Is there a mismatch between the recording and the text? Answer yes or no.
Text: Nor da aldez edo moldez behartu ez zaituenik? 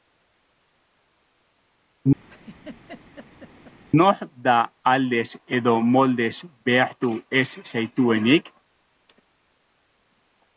no